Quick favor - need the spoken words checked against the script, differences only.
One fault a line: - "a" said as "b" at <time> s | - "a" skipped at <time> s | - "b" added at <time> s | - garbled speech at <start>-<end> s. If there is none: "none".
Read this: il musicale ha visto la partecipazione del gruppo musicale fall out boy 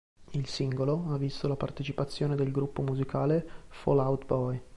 - "musicale" said as "singolo" at 0.5 s